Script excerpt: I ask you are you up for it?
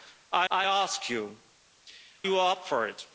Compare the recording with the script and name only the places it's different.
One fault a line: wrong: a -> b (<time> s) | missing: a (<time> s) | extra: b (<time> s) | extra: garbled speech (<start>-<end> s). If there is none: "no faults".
extra: I (0.5 s)
missing: are (1.4 s)